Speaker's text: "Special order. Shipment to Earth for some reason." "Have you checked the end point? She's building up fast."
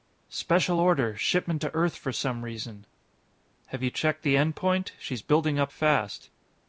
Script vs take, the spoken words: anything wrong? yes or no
no